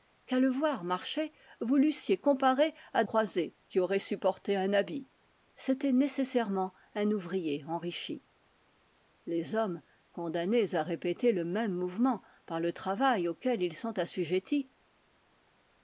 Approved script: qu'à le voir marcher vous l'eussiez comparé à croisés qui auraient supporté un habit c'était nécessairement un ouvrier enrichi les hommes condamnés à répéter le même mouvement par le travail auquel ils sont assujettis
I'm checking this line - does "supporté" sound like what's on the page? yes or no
yes